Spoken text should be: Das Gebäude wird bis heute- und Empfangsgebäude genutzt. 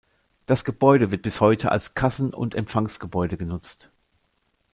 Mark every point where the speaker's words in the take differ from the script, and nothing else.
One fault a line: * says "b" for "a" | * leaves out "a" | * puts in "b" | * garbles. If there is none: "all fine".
* puts in "als Kassen"